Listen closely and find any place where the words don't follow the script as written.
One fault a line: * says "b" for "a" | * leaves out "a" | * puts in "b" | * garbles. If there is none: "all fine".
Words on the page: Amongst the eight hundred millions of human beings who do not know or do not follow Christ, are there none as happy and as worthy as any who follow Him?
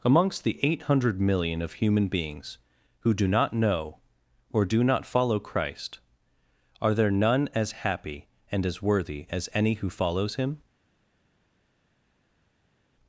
* says "million" for "millions"
* says "follows" for "follow"